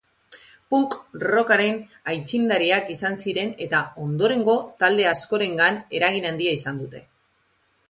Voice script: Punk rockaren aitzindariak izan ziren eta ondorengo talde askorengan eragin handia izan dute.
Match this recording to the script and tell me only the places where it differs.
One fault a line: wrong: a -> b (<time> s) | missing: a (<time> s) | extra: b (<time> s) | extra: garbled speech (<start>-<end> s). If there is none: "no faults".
no faults